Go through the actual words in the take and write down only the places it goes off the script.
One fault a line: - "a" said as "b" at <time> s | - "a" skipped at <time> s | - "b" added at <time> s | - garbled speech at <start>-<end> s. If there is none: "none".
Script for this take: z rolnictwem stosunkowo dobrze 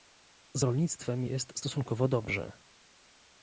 - "jest" added at 1.2 s